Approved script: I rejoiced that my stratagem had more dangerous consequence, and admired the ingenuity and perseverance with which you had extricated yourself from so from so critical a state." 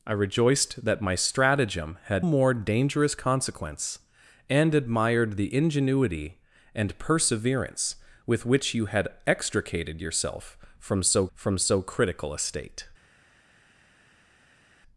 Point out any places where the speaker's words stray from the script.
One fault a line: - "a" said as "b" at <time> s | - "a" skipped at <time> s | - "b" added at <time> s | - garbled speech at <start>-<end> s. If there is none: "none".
none